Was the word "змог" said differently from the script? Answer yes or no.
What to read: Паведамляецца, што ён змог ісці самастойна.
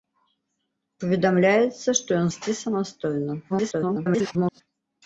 yes